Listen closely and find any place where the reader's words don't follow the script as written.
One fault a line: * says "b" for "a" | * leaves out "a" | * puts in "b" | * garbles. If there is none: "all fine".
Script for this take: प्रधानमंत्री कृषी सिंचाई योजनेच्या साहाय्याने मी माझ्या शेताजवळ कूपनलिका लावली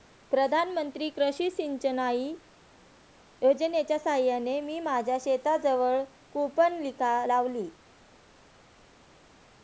all fine